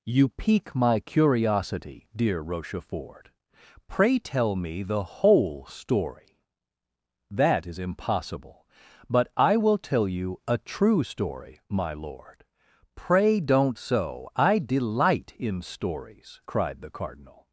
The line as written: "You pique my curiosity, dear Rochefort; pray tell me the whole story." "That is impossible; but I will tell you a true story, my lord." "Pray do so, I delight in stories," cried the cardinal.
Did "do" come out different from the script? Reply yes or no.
yes